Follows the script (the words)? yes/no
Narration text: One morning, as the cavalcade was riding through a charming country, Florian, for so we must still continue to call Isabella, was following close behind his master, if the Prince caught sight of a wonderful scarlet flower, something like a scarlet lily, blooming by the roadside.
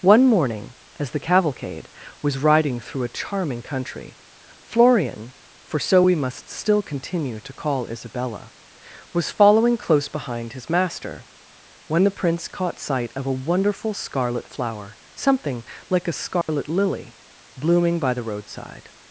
no